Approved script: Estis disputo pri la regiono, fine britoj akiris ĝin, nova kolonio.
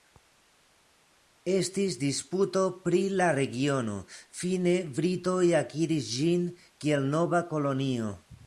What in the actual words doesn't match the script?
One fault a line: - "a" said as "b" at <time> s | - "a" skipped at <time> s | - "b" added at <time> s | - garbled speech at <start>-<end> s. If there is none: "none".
- "kiel" added at 6.9 s